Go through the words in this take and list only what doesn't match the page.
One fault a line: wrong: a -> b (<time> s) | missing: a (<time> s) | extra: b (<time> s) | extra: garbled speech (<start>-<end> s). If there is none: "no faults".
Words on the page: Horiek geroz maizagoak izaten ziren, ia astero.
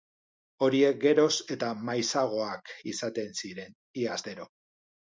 extra: eta (1.6 s)